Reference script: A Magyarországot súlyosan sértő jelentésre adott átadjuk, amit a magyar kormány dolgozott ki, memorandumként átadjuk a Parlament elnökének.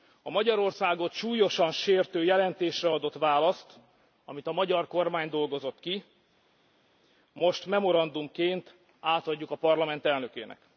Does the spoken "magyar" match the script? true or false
true